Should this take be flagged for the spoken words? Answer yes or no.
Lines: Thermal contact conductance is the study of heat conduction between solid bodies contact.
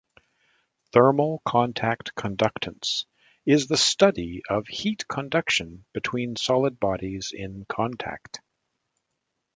yes